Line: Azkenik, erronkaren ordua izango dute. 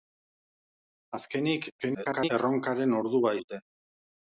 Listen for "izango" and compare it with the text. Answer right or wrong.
wrong